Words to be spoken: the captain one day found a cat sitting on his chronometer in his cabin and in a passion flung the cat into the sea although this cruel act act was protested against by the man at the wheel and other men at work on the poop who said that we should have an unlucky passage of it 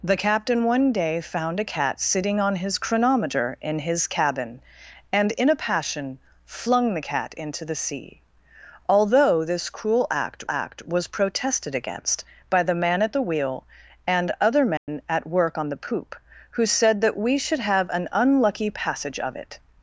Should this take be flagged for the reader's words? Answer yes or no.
no